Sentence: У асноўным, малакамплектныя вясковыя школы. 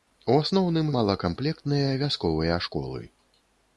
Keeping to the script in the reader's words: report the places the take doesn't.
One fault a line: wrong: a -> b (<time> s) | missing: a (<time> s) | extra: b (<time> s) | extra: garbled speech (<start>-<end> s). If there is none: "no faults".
no faults